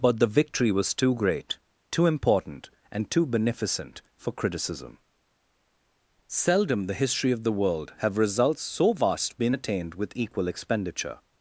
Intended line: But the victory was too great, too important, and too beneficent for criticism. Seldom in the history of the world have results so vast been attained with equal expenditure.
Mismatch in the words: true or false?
true